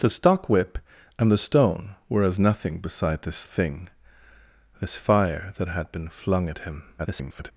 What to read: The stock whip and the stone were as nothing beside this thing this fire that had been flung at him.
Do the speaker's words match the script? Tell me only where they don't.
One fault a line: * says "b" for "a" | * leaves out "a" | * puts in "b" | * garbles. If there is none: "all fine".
* garbles